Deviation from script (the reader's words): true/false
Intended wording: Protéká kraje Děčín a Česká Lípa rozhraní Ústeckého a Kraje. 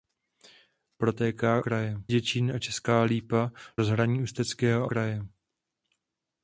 false